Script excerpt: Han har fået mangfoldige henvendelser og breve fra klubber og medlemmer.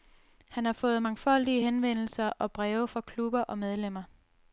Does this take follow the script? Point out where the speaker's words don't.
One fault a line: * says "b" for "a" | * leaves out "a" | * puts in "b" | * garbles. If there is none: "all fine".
all fine